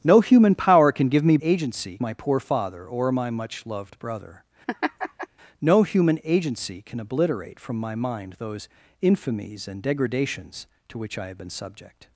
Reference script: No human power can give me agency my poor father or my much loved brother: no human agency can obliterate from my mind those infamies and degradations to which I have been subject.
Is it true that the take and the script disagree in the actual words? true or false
false